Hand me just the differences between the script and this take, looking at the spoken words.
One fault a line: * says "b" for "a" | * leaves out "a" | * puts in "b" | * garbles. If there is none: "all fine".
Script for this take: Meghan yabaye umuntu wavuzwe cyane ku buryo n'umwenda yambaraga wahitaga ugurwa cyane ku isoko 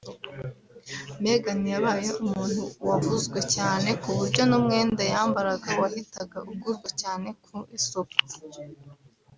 all fine